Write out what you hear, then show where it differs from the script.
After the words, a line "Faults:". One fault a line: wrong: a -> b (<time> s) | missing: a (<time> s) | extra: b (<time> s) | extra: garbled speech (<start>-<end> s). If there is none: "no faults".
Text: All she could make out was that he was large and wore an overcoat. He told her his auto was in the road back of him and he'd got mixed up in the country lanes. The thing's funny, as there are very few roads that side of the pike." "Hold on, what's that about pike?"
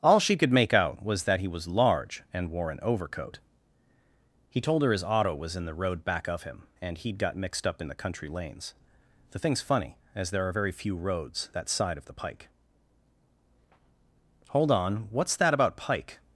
All she could make out was that he was large and wore an overcoat. He told her his auto was in the road back of him and he'd got mixed up in the country lanes. The thing's funny, as there are very few roads that side of the pike." "Hold on, what's that about pike?"
Faults:
no faults